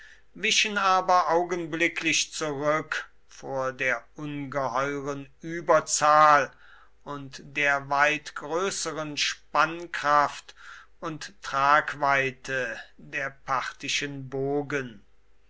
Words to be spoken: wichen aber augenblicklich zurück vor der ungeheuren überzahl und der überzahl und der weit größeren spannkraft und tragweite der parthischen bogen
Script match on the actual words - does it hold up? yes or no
no